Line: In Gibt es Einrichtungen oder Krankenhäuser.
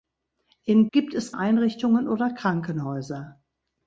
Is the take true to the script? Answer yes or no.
yes